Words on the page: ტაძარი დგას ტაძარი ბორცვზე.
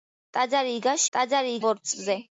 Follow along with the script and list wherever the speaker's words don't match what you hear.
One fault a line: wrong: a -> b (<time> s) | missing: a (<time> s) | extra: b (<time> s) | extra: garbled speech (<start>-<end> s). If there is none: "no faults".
no faults